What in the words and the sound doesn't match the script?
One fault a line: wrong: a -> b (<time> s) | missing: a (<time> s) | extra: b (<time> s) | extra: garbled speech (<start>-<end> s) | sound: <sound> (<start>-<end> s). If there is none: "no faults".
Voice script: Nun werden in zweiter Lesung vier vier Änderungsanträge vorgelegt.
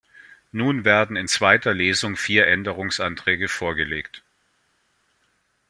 missing: vier (2.5 s)